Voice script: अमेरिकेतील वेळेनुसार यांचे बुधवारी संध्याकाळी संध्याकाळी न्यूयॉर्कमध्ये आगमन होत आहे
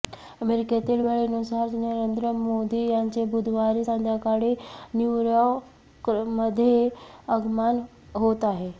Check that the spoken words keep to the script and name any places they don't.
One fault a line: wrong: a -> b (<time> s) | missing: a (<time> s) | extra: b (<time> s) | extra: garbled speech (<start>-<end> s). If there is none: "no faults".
extra: नरेंद्र मोदी (1.7 s)
missing: संध्याकाळी (4.5 s)